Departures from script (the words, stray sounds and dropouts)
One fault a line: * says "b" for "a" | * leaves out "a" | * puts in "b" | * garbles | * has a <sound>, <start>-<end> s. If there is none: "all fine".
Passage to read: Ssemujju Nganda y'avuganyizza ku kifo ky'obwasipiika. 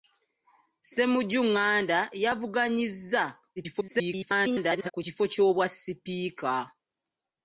* garbles